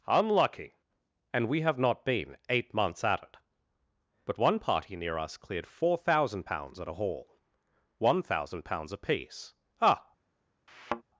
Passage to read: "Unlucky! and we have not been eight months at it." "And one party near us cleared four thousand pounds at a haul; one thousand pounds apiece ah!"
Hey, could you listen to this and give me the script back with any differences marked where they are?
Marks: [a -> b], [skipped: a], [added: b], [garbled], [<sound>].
"Unlucky! and we have not been eight months at it." ["And -> But] one party near us cleared four thousand pounds at a haul; one thousand pounds apiece ah!" [thud]